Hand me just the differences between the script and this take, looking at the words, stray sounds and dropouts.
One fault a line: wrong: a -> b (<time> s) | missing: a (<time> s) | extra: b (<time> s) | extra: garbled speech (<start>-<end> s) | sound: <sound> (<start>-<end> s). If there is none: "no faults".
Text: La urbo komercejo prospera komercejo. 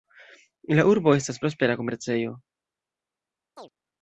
wrong: komercejo -> estas (1.2 s)
sound: chirp (3.6-3.7 s)